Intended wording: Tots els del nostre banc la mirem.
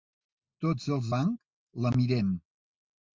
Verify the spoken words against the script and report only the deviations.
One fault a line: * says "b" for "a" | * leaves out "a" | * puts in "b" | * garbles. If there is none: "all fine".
* leaves out "del nostre"